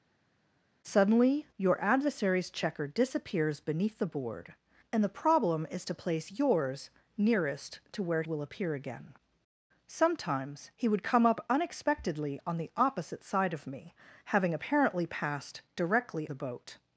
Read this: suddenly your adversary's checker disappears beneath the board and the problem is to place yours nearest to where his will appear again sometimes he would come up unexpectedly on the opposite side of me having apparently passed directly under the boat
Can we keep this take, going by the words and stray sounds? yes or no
no